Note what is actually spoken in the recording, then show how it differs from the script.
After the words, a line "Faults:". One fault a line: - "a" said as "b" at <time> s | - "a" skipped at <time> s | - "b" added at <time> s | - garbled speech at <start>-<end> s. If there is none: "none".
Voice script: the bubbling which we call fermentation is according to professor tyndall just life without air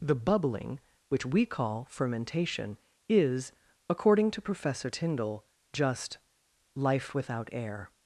the bubbling which we call fermentation is according to professor tyndall just life without air
Faults:
none